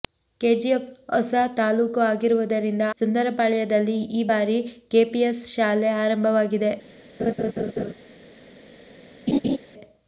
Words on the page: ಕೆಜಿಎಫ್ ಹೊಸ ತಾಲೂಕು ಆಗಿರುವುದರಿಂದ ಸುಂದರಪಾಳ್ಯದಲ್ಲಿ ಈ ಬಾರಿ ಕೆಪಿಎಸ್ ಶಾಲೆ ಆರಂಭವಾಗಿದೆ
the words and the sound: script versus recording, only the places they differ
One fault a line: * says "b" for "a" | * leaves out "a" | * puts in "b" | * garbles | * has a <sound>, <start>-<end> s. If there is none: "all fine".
* has a laugh, 7.2-7.9 s
* has a laugh, 9.3-9.6 s